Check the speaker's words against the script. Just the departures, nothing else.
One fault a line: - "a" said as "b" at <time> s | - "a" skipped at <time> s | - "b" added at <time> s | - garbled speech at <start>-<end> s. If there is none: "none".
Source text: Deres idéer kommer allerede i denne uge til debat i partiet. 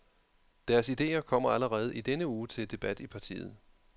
none